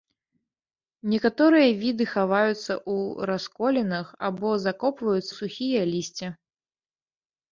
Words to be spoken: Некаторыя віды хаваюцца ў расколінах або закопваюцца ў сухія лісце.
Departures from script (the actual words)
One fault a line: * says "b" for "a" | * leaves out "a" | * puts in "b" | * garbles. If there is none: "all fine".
* leaves out "ў"